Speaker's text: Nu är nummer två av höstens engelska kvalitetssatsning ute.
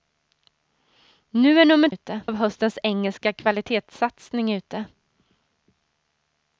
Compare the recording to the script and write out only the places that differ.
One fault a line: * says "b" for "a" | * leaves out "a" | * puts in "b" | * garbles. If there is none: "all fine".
* says "ute" for "två"